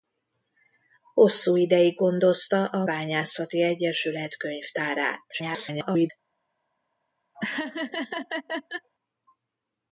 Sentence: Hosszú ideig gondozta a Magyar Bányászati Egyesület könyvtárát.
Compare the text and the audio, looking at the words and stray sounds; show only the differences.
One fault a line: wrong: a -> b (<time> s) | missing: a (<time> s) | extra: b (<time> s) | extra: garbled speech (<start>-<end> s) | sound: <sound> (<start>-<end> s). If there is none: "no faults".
missing: Magyar (2.9 s)
extra: garbled speech (5.3-6.1 s)
sound: laugh (7.3-8.9 s)